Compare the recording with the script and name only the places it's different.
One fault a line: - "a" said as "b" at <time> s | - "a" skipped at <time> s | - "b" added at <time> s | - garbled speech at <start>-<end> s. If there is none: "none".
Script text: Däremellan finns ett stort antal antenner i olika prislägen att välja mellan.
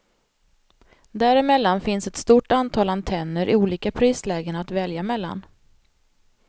none